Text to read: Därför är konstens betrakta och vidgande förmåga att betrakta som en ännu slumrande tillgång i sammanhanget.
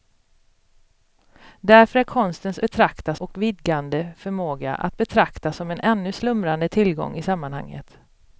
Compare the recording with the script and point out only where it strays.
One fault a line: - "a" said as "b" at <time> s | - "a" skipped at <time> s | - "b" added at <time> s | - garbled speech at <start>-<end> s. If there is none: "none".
none